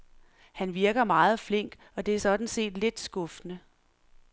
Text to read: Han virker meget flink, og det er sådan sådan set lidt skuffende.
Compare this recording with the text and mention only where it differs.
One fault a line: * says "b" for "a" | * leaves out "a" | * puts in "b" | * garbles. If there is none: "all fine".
* leaves out "sådan"